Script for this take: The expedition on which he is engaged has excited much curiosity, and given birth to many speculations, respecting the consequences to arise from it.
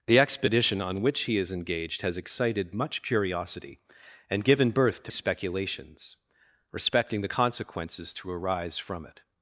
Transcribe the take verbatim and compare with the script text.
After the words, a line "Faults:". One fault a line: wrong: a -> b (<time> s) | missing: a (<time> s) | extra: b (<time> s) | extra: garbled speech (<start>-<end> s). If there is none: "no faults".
The expedition on which he is engaged has excited much curiosity, and given birth to speculations, respecting the consequences to arise from it.
Faults:
missing: many (5.1 s)